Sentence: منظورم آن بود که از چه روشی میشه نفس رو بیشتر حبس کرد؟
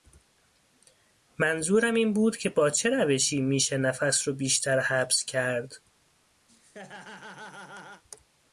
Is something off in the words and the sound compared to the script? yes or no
yes